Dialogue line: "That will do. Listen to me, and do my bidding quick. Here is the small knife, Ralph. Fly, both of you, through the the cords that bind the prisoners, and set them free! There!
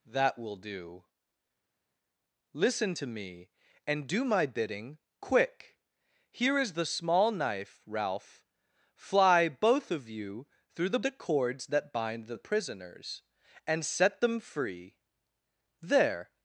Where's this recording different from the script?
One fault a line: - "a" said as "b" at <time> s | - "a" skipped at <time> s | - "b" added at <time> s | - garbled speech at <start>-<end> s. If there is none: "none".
none